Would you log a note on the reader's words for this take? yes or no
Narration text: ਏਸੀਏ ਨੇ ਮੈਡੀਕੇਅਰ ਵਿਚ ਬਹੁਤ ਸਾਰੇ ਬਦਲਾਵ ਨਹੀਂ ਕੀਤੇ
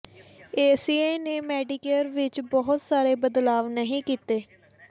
no